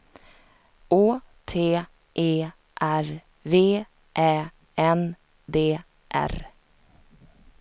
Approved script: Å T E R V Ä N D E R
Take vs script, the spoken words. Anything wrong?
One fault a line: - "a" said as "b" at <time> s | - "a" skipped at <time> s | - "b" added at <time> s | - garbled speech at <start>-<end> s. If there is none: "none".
- "E" skipped at 5.8 s